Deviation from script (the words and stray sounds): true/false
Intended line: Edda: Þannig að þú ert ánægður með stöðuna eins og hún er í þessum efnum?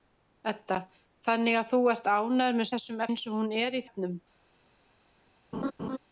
true